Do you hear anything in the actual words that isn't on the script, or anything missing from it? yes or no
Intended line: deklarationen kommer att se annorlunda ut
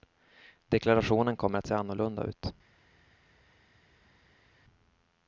no